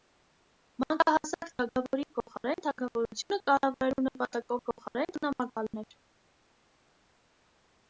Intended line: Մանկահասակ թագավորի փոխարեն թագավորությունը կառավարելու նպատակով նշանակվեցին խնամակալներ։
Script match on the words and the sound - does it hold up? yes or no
no